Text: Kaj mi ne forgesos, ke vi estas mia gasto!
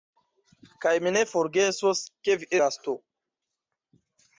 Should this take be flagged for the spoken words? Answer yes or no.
yes